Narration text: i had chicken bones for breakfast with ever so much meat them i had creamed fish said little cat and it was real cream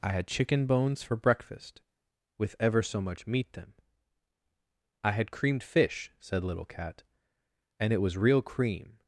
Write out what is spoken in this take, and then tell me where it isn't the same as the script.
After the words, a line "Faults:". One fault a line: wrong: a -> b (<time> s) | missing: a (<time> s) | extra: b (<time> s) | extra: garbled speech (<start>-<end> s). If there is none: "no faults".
i had chicken bones for breakfast with ever so much meat them i had creamed fish said little cat and it was real cream
Faults:
no faults